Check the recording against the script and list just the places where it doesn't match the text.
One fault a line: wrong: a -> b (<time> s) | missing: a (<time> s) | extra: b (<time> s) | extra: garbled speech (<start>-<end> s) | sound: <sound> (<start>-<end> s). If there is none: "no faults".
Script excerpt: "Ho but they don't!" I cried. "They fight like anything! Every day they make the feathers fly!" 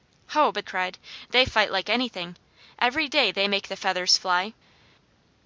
missing: they don't I (0.7 s)